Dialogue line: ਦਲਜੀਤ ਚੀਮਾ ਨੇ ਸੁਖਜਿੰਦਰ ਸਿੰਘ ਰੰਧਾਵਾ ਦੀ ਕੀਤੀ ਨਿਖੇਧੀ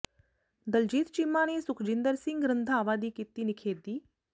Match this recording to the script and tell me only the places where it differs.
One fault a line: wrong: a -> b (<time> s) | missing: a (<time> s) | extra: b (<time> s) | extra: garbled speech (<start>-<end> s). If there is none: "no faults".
no faults